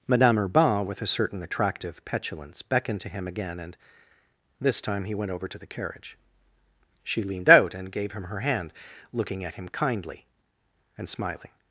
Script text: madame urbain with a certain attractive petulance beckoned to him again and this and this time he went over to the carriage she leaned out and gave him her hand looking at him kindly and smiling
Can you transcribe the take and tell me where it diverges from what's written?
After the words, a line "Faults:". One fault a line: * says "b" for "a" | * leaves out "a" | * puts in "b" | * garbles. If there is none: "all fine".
madame urbain with a certain attractive petulance beckoned to him again and this time he went over to the carriage she leaned out and gave him her hand looking at him kindly and smiling
Faults:
* leaves out "and this"